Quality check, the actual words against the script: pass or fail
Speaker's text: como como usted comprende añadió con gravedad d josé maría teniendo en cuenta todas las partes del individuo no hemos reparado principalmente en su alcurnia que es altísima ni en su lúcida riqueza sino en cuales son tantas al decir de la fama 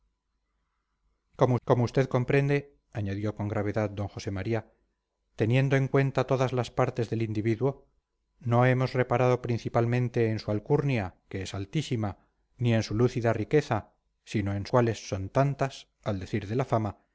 pass